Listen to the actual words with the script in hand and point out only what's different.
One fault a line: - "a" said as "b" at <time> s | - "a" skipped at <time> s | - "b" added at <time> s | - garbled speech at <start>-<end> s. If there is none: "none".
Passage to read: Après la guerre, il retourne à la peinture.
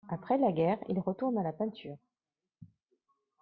none